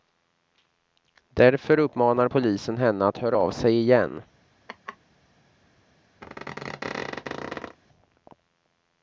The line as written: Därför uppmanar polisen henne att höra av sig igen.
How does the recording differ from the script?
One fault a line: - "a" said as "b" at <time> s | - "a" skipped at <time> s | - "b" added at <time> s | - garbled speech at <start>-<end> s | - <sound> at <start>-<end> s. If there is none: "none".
- laugh at 4.7-5.0 s
- squeak at 6.2-7.8 s